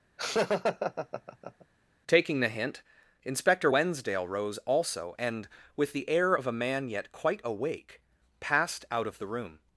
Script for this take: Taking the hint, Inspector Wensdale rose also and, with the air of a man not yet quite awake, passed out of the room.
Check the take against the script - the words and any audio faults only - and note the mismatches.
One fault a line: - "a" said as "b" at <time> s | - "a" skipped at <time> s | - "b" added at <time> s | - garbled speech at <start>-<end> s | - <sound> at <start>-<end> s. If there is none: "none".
- laugh at 0.2-1.7 s
- "not" skipped at 6.9 s